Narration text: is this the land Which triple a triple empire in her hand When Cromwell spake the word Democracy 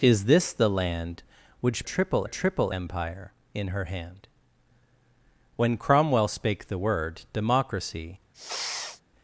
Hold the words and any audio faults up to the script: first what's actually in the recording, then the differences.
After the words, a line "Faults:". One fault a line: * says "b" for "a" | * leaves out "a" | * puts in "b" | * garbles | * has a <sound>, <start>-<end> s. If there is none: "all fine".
is this the land Which triple a triple empire in her hand When Cromwell spake the word Democracy
Faults:
* has a sniff, 8.3-9.0 s